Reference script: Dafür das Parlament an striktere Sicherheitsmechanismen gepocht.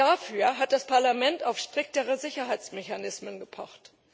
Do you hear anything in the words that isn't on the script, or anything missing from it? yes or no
yes